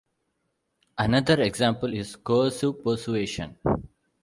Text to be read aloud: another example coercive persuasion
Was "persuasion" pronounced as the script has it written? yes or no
yes